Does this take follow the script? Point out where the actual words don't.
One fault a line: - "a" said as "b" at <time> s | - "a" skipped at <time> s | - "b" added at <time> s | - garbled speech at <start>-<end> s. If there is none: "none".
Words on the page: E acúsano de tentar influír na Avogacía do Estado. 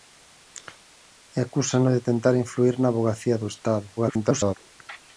- garbled speech at 4.0-4.6 s